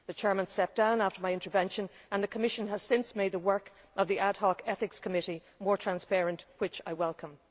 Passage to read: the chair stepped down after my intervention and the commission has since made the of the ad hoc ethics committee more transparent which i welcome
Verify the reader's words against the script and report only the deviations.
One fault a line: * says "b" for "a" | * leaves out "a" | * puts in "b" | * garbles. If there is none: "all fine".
* puts in "work"